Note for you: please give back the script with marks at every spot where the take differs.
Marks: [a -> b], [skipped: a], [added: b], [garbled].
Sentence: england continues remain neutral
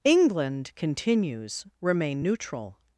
england continues remain neutral